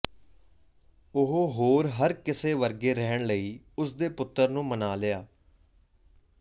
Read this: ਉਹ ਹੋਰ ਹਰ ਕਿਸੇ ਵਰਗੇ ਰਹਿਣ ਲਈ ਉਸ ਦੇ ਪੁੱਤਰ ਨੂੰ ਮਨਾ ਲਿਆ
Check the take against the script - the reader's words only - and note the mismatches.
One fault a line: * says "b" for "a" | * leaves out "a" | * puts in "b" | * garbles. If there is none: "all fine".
all fine